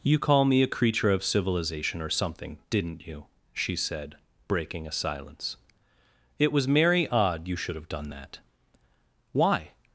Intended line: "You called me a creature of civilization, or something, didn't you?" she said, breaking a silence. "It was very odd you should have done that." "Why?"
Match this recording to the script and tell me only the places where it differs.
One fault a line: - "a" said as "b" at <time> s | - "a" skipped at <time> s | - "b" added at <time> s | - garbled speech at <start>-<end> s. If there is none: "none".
- "called" said as "call" at 0.2 s
- "very" said as "merry" at 6.7 s